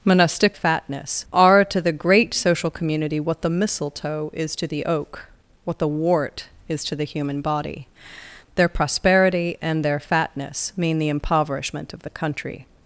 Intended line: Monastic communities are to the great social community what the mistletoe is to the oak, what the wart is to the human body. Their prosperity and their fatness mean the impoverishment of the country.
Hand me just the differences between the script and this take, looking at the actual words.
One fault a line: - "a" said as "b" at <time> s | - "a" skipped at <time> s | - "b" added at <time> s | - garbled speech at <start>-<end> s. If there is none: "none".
- "communities" said as "fatness" at 0.5 s